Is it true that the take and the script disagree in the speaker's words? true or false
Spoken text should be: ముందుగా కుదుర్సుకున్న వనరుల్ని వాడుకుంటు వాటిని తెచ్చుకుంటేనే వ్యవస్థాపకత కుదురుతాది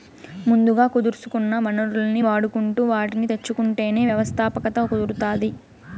false